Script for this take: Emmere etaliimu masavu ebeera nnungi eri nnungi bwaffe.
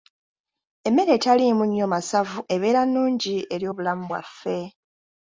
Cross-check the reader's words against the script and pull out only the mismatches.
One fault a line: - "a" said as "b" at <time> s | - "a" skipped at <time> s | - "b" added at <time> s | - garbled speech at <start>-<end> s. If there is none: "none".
- "nnyo" added at 1.7 s
- "nnungi" said as "obulamu" at 3.7 s